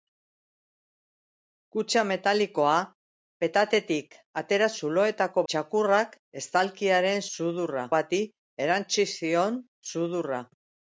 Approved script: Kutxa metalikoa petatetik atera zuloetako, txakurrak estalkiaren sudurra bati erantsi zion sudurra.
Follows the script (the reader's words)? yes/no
yes